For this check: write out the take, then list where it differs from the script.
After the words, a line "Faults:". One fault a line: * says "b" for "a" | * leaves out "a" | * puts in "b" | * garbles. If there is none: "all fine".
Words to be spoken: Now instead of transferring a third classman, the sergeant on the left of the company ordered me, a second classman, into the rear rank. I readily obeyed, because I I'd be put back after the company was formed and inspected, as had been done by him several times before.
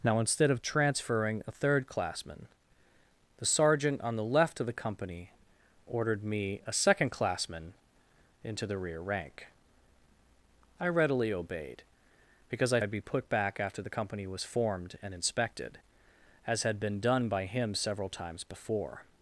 Now instead of transferring a third classman, the sergeant on the left of the company ordered me, a second classman, into the rear rank. I readily obeyed, because I I'd be put back after the company was formed and inspected, as had been done by him several times before.
Faults:
all fine